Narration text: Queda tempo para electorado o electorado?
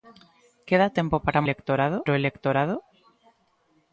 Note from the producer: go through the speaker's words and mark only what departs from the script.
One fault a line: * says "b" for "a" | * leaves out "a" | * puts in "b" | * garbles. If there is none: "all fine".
all fine